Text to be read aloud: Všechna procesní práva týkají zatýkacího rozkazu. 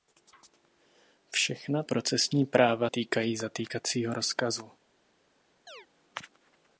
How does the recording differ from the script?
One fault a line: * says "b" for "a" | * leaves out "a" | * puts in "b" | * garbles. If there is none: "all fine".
all fine